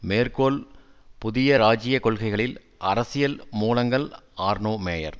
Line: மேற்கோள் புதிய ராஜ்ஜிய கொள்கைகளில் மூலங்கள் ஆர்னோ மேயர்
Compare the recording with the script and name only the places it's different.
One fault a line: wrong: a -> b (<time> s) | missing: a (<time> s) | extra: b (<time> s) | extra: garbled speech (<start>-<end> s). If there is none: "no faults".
extra: அரசியல் (2.8 s)